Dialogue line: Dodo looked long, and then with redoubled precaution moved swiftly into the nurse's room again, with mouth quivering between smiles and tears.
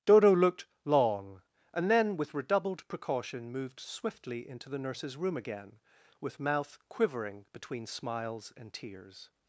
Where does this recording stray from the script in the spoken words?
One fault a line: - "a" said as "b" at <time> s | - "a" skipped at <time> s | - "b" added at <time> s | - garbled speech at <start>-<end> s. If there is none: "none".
none